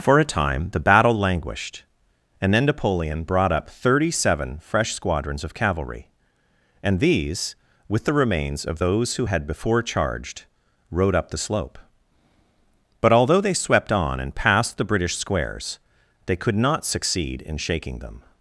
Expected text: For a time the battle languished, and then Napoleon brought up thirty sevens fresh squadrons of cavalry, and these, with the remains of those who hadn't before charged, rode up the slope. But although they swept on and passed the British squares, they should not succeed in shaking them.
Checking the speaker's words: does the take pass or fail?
fail